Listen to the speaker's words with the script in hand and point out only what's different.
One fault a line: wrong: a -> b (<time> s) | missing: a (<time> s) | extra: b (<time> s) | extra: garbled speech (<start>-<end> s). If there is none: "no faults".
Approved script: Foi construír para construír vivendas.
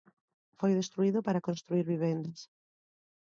wrong: construír -> destruído (0.8 s)